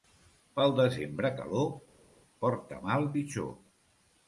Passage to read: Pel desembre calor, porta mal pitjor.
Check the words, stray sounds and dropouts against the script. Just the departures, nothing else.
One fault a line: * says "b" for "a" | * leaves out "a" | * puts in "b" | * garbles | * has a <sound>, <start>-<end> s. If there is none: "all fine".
all fine